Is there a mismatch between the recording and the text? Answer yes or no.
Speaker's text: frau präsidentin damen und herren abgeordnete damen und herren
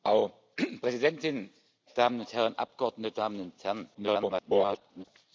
yes